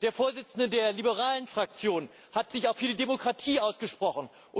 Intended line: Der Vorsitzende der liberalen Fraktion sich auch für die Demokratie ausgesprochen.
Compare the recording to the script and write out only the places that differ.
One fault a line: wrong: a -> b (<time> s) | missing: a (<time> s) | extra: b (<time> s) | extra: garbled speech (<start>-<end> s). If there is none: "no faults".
extra: hat (2.3 s)